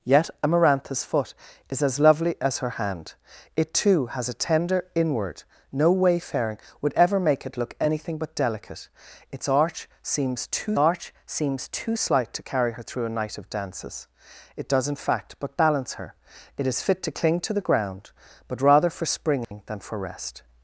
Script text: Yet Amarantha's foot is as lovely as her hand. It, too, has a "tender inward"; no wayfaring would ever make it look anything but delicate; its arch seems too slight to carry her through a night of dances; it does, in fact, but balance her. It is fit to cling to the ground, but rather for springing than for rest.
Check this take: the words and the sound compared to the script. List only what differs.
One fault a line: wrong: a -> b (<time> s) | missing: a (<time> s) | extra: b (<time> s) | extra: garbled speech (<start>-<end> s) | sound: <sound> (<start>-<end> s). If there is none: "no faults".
extra: arch seems too (10.7 s)
sound: dropout (19.4-19.5 s)